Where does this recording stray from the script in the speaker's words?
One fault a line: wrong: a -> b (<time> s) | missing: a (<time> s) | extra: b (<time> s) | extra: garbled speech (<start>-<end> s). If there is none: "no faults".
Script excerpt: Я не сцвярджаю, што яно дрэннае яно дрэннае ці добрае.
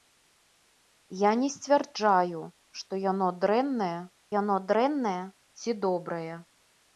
no faults